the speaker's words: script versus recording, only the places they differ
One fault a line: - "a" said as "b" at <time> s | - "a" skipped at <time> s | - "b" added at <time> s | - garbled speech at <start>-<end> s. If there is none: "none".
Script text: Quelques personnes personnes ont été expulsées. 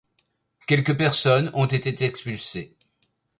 - "personnes" skipped at 1.5 s